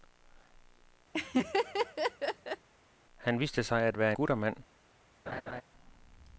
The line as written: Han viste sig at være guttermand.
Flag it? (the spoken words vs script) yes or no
no